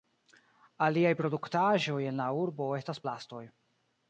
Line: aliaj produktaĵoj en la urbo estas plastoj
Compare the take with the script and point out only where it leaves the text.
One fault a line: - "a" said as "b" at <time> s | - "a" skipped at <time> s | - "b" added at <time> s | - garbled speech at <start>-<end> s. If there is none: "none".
none